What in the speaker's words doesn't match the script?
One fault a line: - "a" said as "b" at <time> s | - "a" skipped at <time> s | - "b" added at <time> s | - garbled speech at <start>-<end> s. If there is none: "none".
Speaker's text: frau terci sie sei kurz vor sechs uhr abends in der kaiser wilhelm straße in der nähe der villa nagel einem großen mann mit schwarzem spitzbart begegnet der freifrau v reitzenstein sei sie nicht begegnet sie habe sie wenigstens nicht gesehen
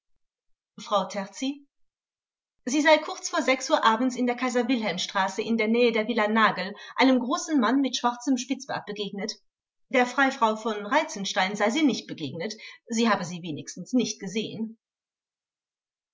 none